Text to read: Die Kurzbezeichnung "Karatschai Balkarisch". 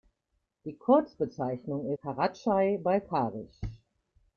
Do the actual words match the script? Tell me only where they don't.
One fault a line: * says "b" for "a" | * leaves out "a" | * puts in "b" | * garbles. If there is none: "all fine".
all fine